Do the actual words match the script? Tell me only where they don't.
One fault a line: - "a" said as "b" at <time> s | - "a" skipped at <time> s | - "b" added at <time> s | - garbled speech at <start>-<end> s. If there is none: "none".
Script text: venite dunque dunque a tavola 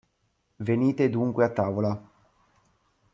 - "dunque" skipped at 1.4 s